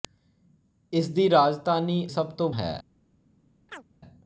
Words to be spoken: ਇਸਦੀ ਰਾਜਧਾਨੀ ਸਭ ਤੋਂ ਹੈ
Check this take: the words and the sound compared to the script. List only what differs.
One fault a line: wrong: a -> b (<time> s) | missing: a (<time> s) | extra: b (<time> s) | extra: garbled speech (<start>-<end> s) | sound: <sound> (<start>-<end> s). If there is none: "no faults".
sound: chirp (3.7-3.8 s)